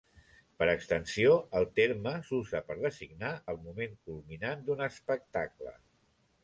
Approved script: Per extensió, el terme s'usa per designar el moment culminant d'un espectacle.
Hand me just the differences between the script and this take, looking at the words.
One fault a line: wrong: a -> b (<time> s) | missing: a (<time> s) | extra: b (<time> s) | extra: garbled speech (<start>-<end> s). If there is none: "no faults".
no faults